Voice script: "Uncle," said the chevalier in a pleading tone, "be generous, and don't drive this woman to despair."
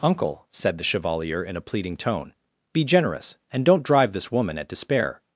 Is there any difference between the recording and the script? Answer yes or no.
yes